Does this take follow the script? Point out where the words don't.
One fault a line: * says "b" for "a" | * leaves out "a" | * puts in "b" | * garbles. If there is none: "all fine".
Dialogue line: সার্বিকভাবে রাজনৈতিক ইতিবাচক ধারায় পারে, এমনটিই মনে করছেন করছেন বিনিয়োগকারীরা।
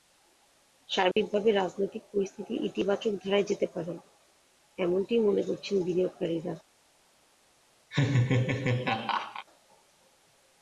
* puts in "পরিস্থিতি"
* puts in "যেতে"
* leaves out "করছেন"